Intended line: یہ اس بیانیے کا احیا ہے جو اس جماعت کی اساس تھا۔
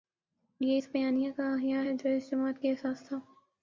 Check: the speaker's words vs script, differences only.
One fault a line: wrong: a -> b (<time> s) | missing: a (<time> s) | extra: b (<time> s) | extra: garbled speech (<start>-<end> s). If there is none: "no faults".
no faults